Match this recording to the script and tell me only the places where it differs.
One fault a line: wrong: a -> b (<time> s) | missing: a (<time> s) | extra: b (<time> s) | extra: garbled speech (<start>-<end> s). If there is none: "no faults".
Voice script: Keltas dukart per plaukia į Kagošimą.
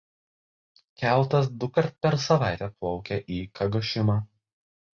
extra: savaitę (2.3 s)